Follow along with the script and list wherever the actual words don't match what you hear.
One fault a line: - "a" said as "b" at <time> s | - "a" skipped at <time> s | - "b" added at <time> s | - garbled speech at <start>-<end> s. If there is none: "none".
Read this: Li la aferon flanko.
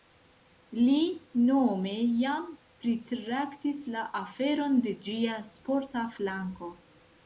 - "nome jam pritraktis" added at 1.5 s
- "de ĝia sporta" added at 4.9 s